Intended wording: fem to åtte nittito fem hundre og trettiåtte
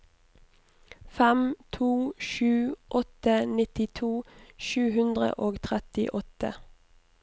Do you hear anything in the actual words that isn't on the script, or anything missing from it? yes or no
yes